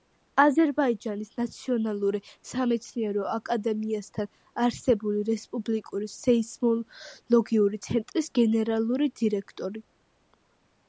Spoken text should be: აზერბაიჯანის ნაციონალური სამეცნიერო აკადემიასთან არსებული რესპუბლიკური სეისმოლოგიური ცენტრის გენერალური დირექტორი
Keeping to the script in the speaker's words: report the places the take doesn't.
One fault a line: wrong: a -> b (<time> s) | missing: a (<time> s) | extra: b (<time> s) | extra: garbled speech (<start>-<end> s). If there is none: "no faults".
no faults